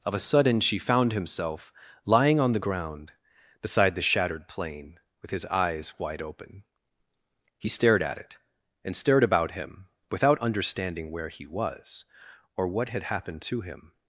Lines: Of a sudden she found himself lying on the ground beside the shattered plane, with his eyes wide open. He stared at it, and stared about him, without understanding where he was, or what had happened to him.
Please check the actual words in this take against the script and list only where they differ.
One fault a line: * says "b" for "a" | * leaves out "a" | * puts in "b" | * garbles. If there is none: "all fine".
all fine